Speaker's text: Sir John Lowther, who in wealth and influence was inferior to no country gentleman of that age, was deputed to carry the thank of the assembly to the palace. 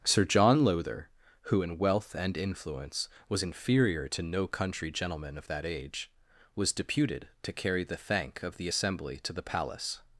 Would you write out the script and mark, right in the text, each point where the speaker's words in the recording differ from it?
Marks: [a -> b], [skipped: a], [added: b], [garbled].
Sir John Lowther, who in wealth and influence was inferior to no country gentleman of that age, was deputed to carry the thank of the assembly to the palace.